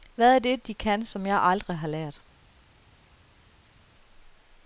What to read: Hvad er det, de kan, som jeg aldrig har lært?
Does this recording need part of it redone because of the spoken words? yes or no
no